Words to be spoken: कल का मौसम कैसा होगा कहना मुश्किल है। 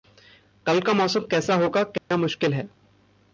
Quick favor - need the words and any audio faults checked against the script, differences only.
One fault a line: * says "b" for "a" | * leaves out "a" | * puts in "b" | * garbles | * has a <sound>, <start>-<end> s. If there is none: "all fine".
* has a dropout, 2.0-2.1 s